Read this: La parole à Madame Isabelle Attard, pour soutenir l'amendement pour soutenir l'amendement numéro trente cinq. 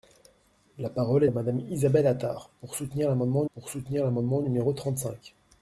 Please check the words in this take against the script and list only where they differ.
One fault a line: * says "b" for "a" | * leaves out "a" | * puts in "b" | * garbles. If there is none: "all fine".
all fine